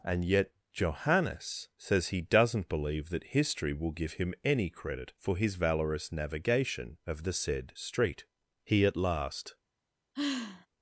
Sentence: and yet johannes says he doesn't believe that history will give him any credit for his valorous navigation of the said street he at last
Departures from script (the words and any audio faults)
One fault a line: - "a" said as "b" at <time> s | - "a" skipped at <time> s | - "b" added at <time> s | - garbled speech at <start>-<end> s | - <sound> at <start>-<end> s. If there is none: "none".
- sigh at 10.1-10.7 s